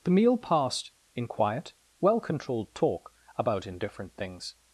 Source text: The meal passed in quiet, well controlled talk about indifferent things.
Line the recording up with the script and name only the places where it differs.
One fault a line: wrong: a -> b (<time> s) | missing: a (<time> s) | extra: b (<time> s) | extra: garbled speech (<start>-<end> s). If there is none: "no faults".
no faults